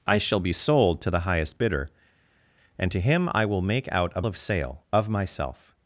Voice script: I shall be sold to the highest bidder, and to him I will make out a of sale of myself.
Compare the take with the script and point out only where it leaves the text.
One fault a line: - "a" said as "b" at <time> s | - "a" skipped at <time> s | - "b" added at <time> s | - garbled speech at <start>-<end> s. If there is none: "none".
none